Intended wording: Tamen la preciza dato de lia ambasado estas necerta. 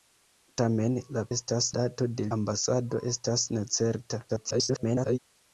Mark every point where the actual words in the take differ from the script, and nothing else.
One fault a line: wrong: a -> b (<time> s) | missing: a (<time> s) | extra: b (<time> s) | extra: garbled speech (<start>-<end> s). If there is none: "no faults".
wrong: preciza -> estas (1.4 s)
missing: lia (2.3 s)
extra: garbled speech (4.3-5.2 s)